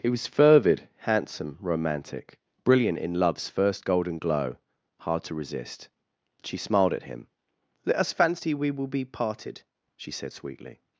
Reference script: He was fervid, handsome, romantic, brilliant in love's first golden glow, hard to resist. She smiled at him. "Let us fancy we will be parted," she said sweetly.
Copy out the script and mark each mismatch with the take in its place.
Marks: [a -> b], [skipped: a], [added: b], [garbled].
He was fervid, handsome, romantic, brilliant in love's first golden glow, hard to resist. She smiled at him. "Let us fancy we will be parted," she said sweetly.